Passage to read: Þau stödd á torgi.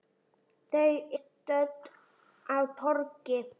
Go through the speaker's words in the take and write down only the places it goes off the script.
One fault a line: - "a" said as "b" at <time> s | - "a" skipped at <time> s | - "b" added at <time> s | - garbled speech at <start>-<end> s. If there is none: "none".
none